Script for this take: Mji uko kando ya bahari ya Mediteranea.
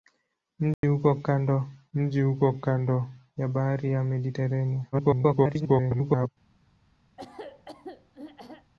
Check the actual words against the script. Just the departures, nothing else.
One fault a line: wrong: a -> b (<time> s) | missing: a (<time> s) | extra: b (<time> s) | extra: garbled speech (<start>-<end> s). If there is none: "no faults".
extra: mji uko kando (1.9 s)
extra: garbled speech (4.9-6.3 s)